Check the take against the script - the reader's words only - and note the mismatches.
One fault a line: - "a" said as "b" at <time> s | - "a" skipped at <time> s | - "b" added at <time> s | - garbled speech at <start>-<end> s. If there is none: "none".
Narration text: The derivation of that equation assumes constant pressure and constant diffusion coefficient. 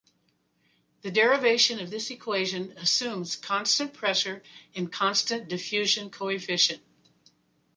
- "that" said as "this" at 1.9 s